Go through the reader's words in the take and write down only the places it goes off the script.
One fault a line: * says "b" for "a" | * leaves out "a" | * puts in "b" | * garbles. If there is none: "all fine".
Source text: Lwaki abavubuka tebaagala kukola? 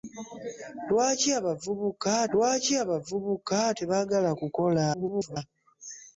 * puts in "lwaki abavubuka"
* garbles